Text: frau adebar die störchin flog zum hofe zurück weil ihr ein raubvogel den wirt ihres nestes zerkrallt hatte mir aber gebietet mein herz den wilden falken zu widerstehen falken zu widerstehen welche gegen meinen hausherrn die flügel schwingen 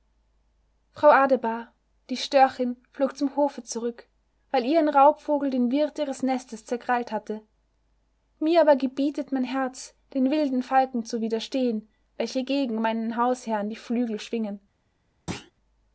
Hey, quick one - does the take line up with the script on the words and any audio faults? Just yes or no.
no